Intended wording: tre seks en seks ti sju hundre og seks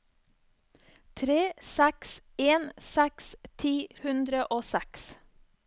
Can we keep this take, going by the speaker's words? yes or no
no